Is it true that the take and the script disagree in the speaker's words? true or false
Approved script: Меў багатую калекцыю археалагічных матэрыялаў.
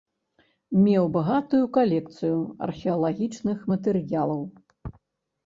false